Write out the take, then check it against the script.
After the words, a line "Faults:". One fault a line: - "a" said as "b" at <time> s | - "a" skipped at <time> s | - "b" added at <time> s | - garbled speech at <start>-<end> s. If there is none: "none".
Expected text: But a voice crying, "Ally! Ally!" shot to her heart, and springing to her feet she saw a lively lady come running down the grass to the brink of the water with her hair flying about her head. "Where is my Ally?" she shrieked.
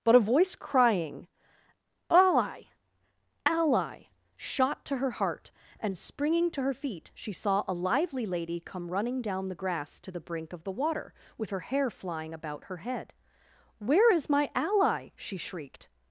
But a voice crying, "Ally! Ally!" shot to her heart, and springing to her feet she saw a lively lady come running down the grass to the brink of the water with her hair flying about her head. "Where is my Ally?" she shrieked.
Faults:
none